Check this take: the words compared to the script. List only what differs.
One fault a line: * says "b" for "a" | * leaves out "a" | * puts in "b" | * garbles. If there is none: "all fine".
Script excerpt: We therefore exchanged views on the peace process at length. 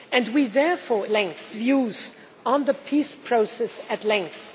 * says "length" for "exchanged"